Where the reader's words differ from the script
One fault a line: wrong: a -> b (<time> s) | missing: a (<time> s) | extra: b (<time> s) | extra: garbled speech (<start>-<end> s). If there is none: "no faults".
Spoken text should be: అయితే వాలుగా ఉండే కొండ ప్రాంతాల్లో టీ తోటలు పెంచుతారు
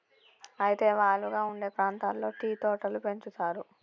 missing: కొండ (1.7 s)